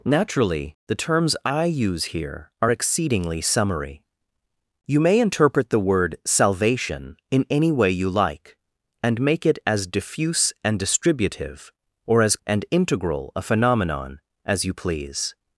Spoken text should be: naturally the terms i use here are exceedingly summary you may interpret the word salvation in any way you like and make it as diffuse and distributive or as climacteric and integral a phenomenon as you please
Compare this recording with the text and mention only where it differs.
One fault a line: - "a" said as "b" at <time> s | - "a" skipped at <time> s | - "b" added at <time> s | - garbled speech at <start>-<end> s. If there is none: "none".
- "climacteric" skipped at 12.4 s